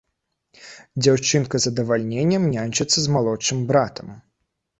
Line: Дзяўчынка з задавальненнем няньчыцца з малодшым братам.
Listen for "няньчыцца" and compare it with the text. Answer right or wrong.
right